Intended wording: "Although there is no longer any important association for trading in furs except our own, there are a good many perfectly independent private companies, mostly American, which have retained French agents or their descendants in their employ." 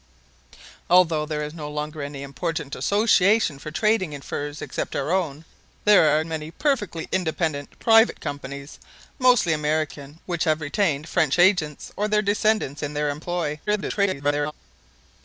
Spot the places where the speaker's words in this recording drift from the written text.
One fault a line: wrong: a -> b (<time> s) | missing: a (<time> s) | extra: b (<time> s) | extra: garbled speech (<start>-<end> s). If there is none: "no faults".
missing: good (6.2 s)
extra: garbled speech (13.7-14.5 s)